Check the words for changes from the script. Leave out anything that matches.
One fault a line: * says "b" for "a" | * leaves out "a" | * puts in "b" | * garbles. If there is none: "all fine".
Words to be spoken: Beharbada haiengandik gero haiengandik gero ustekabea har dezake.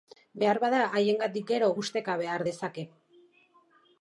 * leaves out "haiengandik gero"